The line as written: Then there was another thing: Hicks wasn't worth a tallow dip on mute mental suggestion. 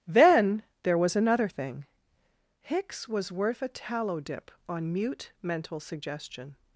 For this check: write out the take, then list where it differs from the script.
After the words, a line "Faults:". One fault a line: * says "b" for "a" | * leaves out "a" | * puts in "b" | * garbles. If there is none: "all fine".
Then there was another thing: Hicks was worth a tallow dip on mute mental suggestion.
Faults:
* says "was" for "wasn't"